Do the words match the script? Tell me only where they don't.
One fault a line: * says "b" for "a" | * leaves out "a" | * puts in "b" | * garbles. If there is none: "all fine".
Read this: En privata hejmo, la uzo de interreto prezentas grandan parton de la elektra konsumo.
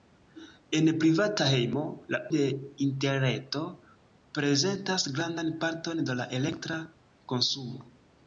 * leaves out "uzo"